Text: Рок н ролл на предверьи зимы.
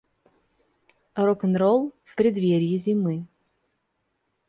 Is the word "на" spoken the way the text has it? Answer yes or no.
no